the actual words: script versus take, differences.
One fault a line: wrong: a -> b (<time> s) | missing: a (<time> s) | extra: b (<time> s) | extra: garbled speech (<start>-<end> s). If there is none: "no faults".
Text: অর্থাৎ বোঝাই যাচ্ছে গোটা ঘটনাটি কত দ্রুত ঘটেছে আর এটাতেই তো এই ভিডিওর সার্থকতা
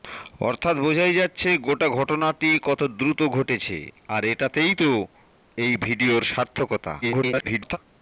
extra: garbled speech (7.0-7.8 s)